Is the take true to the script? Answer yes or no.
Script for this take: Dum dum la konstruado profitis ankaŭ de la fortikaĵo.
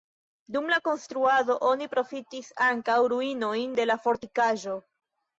no